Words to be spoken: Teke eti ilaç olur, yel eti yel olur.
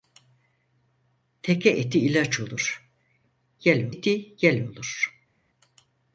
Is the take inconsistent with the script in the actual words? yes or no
no